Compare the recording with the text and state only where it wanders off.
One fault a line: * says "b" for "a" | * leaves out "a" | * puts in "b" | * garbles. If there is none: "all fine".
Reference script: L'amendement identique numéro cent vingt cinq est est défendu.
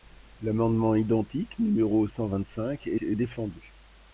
all fine